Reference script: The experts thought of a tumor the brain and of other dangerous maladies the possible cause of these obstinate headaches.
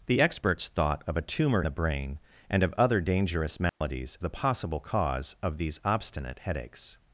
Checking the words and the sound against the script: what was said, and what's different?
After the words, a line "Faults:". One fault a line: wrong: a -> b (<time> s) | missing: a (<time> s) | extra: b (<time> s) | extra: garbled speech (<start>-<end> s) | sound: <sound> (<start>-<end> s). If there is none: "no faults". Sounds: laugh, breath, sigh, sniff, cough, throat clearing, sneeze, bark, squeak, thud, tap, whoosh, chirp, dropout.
The experts thought of a tumor the brain and of other dangerous maladies the possible cause of these obstinate headaches.
Faults:
sound: dropout (3.7-3.8 s)